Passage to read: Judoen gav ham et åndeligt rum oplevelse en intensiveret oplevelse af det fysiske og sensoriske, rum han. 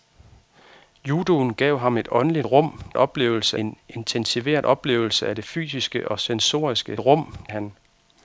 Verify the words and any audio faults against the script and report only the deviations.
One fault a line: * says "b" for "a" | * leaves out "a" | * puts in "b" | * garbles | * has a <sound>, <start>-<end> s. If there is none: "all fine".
all fine